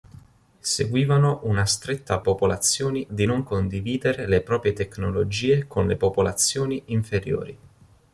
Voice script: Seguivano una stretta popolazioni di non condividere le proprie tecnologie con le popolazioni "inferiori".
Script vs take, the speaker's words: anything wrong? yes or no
no